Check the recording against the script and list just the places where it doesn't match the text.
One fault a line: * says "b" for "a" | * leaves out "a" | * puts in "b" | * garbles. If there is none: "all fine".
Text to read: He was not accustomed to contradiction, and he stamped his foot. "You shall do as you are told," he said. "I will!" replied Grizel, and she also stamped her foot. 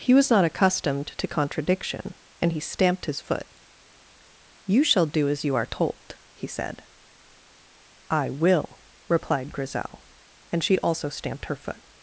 all fine